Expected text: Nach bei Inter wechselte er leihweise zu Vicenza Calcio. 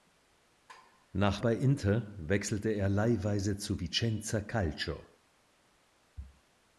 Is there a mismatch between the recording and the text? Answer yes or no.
no